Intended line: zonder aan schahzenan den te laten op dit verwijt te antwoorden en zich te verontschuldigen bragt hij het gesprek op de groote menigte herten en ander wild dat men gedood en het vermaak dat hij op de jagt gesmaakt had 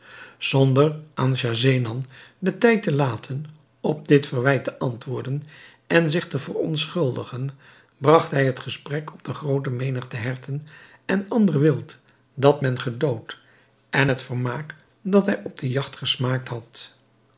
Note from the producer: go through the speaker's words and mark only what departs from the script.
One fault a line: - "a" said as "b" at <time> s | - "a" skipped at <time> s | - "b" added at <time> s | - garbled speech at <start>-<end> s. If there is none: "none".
- "tijd" added at 2.6 s